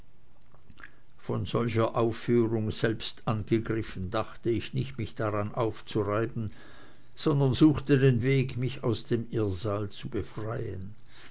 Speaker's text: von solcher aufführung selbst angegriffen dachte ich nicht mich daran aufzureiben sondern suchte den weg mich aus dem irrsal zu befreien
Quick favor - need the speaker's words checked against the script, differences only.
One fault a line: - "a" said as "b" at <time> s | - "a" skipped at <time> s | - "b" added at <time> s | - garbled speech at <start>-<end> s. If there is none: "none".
none